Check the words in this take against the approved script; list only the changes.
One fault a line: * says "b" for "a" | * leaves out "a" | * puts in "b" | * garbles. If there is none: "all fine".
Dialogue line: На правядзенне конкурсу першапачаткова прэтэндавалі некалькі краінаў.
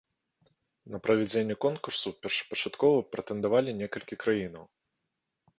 all fine